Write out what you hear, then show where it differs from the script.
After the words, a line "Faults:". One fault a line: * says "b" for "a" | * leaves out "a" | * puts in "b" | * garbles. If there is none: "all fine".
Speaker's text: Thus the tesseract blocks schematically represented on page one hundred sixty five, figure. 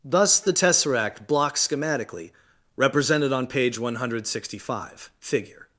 Thus the tesseract blocks schematically represented on page one hundred sixty five, figure.
Faults:
all fine